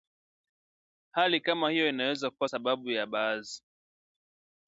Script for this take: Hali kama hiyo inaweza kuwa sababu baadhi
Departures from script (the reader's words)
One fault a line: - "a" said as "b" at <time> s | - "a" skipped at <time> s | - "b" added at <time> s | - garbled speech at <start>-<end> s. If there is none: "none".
- "ya" added at 2.9 s